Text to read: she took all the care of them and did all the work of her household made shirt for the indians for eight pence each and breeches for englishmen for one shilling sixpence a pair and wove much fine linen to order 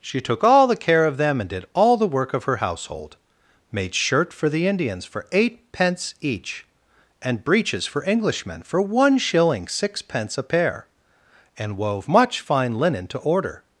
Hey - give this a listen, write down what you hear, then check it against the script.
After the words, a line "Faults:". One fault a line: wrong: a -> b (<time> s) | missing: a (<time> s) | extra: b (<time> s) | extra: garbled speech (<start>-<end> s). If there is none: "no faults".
she took all the care of them and did all the work of her household made shirt for the indians for eight pence each and breeches for englishmen for one shilling sixpence a pair and wove much fine linen to order
Faults:
no faults